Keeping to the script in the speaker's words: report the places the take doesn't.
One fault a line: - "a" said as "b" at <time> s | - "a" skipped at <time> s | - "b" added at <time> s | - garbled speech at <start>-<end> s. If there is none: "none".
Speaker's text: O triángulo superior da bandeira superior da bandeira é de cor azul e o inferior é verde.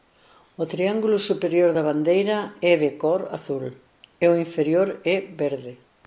- "superior da bandeira" skipped at 2.4 s